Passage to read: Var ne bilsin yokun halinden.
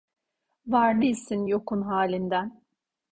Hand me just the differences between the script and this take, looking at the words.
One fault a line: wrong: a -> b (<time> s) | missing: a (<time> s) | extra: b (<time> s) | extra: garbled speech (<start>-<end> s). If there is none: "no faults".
missing: ne (1.0 s)